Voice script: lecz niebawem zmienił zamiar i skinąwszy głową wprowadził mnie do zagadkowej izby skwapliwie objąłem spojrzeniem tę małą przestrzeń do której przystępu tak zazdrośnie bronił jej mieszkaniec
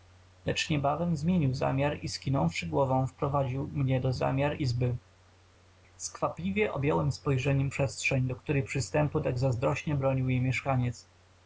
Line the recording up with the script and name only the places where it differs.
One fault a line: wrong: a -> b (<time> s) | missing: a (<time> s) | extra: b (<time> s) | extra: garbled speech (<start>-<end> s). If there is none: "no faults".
wrong: zagadkowej -> zamiar (4.1 s)
missing: tę małą (7.7 s)